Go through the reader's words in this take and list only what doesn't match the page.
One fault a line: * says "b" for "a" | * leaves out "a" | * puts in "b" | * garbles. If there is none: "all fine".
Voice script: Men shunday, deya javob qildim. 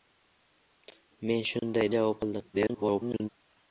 * leaves out "deya"
* garbles